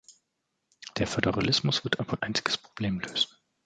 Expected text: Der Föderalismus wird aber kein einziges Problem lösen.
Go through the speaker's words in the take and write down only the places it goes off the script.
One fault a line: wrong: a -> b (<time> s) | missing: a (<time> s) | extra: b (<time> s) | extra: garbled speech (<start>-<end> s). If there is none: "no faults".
missing: kein (2.2 s)